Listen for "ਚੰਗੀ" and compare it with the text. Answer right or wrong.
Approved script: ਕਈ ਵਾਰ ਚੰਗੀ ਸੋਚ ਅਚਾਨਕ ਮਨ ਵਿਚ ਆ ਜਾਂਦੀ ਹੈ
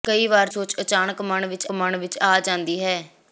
wrong